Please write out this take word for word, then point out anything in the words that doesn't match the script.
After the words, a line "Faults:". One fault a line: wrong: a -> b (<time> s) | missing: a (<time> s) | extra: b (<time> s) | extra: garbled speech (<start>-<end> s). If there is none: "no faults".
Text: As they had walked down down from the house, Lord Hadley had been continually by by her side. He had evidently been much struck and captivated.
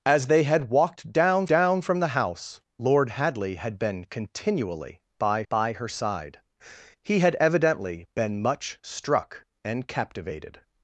As they had walked down down from the house, Lord Hadley had been continually by by her side. He had evidently been much struck and captivated.
Faults:
no faults